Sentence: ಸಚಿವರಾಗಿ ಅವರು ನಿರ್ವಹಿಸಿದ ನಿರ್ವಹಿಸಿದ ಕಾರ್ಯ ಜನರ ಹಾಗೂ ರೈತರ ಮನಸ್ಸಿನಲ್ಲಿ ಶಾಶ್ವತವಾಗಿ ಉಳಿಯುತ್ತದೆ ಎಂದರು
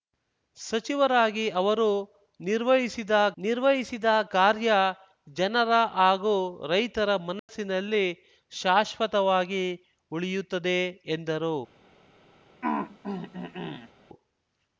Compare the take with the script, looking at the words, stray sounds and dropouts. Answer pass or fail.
fail